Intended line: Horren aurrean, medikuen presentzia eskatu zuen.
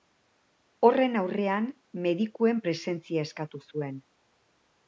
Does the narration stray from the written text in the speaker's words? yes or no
no